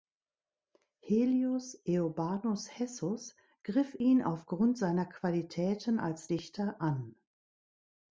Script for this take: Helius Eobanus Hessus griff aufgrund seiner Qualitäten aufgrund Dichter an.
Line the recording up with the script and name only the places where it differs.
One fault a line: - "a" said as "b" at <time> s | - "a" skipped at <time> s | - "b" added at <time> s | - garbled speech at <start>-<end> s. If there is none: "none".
- "ihn" added at 3.9 s
- "aufgrund" said as "als" at 6.0 s